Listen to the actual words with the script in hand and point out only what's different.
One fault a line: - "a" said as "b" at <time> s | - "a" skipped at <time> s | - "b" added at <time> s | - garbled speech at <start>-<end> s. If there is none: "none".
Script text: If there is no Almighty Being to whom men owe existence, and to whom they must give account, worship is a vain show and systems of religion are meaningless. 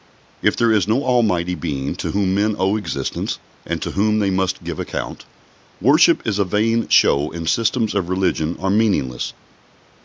none